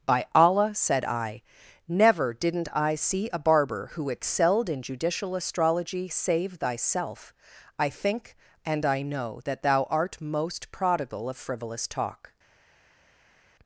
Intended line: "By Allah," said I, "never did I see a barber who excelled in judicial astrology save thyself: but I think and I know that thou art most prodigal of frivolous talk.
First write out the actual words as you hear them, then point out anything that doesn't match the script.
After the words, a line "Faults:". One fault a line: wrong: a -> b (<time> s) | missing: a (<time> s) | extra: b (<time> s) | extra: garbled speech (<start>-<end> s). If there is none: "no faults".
"By Allah," said I, "never didn't I see a barber who excelled in judicial astrology save thyself: I think and I know that thou art most prodigal of frivolous talk.
Faults:
wrong: did -> didn't (2.3 s)
missing: but (7.3 s)